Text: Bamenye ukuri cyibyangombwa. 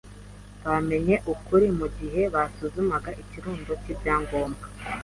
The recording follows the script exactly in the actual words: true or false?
false